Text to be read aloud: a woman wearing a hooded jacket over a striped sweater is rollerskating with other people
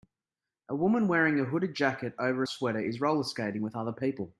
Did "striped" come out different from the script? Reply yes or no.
yes